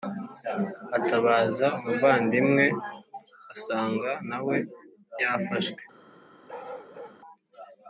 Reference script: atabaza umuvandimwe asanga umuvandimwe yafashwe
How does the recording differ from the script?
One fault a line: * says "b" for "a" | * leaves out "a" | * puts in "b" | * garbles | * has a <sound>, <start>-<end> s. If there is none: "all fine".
* says "nawe" for "umuvandimwe"
* has a bark, 6.5-7.2 s